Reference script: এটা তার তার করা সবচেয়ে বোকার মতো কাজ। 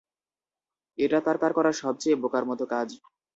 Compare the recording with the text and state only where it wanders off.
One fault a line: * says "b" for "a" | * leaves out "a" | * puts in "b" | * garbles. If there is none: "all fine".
all fine